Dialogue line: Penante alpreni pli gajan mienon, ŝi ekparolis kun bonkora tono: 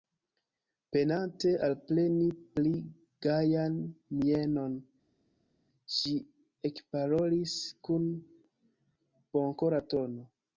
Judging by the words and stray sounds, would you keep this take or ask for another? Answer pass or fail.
pass